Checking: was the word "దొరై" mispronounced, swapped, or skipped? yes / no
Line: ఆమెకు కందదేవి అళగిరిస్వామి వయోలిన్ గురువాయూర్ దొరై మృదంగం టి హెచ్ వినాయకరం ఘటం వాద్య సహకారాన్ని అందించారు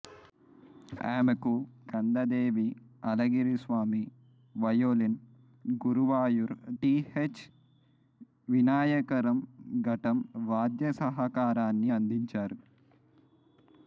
yes